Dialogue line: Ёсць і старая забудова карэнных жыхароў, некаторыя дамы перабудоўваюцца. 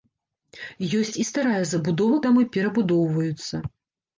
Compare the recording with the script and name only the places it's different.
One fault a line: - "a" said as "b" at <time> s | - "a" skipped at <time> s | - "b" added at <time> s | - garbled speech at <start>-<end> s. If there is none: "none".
- "карэнных жыхароў некаторыя" skipped at 2.2 s